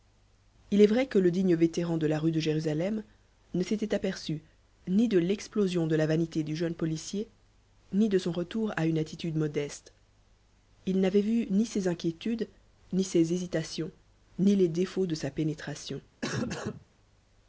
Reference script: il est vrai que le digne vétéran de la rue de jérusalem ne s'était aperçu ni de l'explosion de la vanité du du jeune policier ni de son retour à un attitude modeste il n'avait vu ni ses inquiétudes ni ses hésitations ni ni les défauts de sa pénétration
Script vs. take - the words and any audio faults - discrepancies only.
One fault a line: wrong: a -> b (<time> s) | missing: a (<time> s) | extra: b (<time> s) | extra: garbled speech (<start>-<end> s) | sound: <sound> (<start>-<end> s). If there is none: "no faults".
missing: du (6.5 s)
wrong: un -> une (8.9 s)
missing: ni (14.5 s)
sound: cough (16.2-16.9 s)